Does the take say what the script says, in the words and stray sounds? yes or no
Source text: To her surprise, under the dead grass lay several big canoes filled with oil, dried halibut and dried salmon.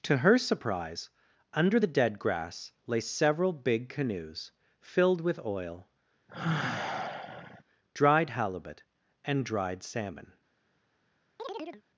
no